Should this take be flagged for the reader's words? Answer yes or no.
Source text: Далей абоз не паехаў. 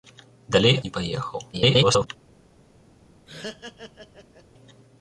yes